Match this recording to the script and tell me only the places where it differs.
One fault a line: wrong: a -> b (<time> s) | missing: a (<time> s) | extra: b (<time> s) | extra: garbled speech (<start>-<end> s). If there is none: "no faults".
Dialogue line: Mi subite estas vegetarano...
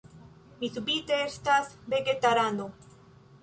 no faults